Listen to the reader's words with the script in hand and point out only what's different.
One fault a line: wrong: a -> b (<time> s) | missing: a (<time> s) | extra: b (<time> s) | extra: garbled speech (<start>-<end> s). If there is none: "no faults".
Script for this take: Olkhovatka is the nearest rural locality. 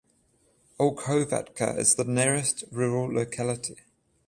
no faults